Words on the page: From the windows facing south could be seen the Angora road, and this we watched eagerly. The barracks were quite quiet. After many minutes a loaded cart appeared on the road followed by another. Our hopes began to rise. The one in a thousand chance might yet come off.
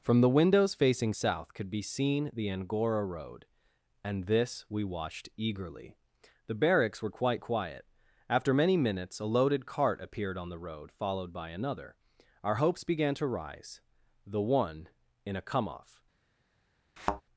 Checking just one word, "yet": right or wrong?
wrong